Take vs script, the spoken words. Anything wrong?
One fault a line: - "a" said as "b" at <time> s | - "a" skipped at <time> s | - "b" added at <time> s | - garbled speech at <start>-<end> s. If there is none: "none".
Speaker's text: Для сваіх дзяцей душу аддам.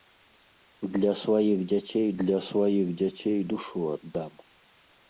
- "для сваіх дзяцей" added at 2.2 s